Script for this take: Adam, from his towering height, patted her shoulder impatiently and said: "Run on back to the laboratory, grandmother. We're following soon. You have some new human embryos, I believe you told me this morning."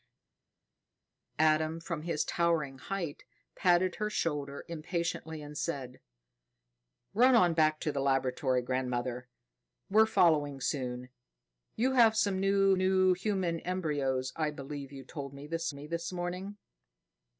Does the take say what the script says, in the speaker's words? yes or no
no